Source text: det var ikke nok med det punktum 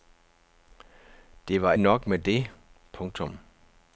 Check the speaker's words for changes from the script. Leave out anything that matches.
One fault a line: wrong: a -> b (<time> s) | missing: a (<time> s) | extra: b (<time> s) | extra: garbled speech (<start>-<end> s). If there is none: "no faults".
missing: ikke (1.7 s)